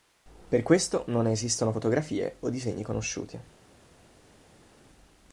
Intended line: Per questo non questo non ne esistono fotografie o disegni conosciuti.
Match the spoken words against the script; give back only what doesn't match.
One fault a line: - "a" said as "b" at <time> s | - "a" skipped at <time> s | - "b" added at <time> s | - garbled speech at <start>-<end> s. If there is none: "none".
- "questo non" skipped at 1.2 s